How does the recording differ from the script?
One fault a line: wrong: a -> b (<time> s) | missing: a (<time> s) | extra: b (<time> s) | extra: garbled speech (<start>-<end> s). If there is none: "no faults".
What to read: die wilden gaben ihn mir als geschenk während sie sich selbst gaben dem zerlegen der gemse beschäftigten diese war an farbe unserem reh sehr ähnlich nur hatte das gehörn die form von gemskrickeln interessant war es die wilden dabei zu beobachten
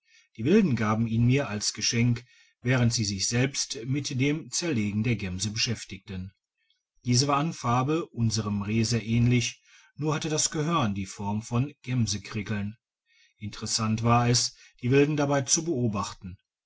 wrong: gaben -> mit (3.9 s)